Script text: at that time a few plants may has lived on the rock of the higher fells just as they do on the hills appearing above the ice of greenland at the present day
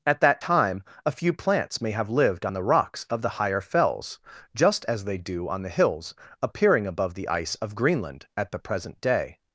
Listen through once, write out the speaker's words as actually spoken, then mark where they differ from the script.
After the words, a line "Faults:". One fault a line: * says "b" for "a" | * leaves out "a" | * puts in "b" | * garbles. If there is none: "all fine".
at that time a few plants may have lived on the rocks of the higher fells just as they do on the hills appearing above the ice of greenland at the present day
Faults:
* says "have" for "has"
* says "rocks" for "rock"